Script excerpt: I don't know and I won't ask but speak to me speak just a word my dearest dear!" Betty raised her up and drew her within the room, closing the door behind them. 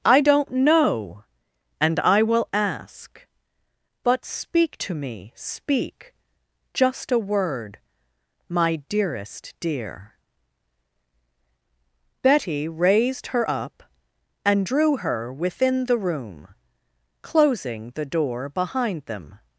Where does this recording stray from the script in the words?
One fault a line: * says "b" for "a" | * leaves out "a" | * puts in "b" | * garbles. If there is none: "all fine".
* says "will" for "won't"